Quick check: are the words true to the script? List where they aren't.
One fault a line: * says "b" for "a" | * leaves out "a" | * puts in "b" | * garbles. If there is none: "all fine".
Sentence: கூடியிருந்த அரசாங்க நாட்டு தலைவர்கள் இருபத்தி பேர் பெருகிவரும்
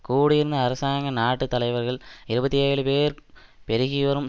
* puts in "ஏழு"